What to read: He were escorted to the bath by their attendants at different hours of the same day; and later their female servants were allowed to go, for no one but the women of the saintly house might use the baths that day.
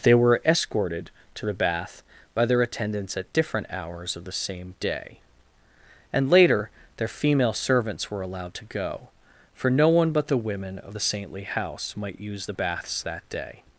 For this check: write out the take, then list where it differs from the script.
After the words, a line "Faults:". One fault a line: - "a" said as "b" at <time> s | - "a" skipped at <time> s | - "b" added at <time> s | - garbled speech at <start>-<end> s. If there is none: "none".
They were escorted to the bath by their attendants at different hours of the same day; and later their female servants were allowed to go, for no one but the women of the saintly house might use the baths that day.
Faults:
- "He" said as "They" at 0.0 s